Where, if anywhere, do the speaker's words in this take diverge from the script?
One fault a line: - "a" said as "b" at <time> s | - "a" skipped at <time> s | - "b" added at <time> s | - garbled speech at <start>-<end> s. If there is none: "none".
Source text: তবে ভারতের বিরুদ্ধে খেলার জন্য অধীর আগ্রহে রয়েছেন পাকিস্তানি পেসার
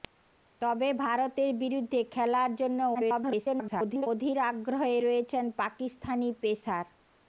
- garbled speech at 2.9-4.1 s